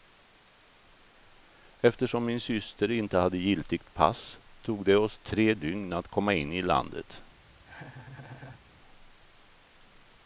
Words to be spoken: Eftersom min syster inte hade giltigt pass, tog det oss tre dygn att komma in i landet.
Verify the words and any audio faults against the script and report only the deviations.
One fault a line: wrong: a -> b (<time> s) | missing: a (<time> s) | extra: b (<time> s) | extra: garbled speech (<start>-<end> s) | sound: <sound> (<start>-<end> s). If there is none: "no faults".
sound: laugh (7.6-8.6 s)